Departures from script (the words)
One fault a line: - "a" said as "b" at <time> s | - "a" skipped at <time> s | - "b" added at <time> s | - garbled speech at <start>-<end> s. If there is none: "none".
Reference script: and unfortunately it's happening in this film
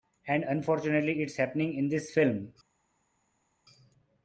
none